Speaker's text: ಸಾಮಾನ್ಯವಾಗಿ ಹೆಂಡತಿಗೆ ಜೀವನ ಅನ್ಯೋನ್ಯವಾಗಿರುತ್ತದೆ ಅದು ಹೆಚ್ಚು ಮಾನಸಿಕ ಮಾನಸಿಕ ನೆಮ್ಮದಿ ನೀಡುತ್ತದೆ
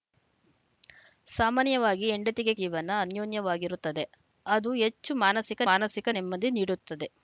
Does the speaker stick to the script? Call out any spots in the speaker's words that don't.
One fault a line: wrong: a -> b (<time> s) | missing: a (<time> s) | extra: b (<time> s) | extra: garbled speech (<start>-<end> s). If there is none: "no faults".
no faults